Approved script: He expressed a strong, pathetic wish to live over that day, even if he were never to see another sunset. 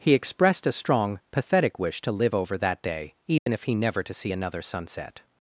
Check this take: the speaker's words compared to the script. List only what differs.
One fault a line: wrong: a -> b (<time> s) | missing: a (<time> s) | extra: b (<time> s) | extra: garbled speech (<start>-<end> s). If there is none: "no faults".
missing: were (3.8 s)